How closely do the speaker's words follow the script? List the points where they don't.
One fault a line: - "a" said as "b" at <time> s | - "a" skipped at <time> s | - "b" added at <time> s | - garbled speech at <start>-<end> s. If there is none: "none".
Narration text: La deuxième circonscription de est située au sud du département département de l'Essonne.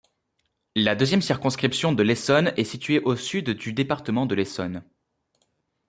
- "l'Essonne" added at 2.0 s
- "département" skipped at 4.2 s